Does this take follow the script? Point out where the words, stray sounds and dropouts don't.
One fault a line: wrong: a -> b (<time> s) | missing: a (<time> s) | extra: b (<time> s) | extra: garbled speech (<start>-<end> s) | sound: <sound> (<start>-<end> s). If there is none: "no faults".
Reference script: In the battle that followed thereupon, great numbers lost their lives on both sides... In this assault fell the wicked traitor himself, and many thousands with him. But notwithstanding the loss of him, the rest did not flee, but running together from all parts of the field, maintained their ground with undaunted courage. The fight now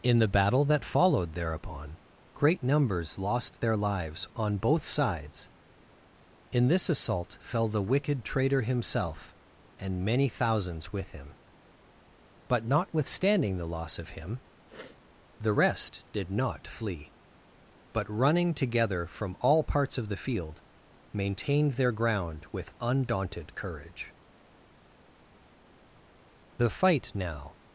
sound: sniff (14.7-15.0 s)